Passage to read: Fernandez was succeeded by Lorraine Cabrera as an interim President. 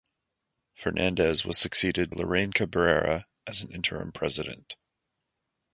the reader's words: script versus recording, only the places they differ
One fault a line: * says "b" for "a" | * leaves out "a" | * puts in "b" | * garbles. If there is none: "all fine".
* leaves out "by"